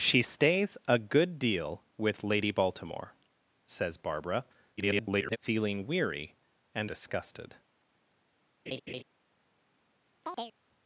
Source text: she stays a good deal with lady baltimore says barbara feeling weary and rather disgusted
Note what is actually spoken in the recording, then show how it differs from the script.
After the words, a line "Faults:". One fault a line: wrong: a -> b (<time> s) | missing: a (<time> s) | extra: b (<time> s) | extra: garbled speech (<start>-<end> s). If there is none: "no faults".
she stays a good deal with lady baltimore says barbara [garbled] feeling weary and disgusted
Faults:
extra: garbled speech (4.8-5.4 s)
missing: rather (6.9 s)